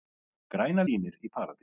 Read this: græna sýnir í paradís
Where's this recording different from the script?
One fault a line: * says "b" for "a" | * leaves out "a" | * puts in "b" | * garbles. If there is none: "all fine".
all fine